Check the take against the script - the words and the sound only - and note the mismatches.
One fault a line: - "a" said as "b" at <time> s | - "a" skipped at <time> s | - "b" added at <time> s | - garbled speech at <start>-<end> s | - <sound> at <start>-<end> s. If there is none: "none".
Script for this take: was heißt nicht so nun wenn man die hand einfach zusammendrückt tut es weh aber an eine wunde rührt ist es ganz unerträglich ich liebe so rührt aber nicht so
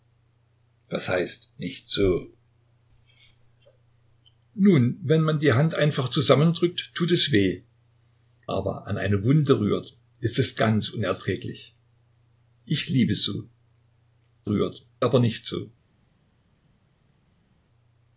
none